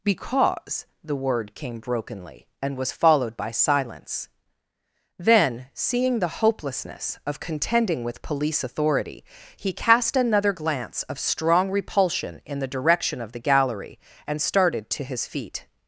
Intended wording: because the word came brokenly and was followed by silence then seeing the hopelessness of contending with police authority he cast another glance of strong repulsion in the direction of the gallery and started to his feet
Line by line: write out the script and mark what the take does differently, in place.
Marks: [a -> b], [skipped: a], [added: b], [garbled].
because the word came brokenly and was followed by silence then seeing the hopelessness of contending with police authority he cast another glance of strong repulsion in the direction of the gallery and started to his feet